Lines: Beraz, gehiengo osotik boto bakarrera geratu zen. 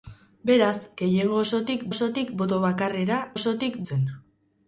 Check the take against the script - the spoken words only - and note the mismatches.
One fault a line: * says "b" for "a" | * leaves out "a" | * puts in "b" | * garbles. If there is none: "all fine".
* puts in "osotik"
* says "osotik" for "geratu"